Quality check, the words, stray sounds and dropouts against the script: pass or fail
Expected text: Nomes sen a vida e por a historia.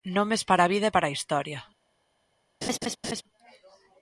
fail